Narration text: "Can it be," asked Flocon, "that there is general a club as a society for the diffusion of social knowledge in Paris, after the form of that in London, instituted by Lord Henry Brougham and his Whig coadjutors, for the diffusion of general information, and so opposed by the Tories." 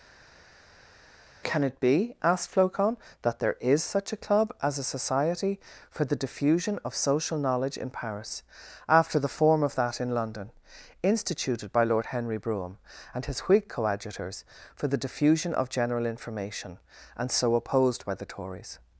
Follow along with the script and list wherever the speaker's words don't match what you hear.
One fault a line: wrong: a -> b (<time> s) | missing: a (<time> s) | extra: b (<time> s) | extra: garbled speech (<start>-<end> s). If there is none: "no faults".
wrong: general -> such (3.8 s)